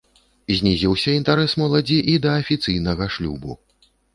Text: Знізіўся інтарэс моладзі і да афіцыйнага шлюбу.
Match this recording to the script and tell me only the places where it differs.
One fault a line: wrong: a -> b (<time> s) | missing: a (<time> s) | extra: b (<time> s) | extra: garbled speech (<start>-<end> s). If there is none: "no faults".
no faults